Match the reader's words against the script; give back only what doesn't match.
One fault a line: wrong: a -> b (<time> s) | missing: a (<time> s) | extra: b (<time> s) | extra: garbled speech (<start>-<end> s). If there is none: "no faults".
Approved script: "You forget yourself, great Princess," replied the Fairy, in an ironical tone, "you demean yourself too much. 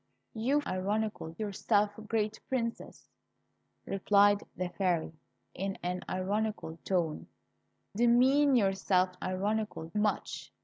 wrong: forget -> ironical (0.7 s)
missing: you (7.3 s)
wrong: too -> ironical (9.2 s)